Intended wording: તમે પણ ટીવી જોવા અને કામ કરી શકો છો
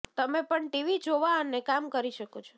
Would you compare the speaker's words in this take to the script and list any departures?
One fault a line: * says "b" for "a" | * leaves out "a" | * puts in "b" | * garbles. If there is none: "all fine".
all fine